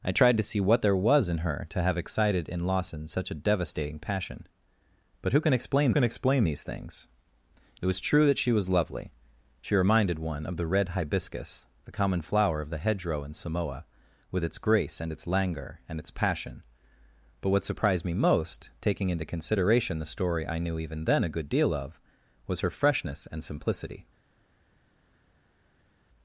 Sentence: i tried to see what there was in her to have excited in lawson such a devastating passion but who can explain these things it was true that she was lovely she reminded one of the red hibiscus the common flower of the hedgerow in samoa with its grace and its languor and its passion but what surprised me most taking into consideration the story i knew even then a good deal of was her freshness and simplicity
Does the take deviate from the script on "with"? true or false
false